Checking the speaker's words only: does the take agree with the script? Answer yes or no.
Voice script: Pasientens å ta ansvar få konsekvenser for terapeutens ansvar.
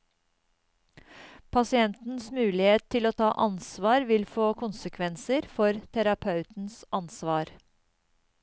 no